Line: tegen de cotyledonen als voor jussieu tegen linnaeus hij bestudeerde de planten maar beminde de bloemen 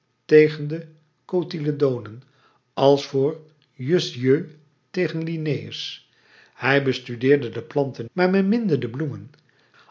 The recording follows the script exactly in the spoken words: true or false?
true